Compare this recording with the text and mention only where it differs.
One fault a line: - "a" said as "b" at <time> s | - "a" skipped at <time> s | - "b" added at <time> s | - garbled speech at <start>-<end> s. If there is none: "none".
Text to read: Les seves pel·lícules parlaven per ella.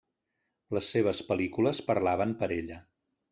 none